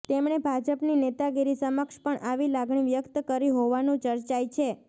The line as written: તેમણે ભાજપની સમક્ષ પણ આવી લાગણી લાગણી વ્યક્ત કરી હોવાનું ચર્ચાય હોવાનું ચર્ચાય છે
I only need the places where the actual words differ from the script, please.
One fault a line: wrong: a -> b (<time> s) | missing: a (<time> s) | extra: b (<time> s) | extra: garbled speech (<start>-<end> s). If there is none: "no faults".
extra: નેતાગીરી (1.0 s)
missing: લાગણી (2.9 s)
missing: હોવાનું ચર્ચાય (4.5 s)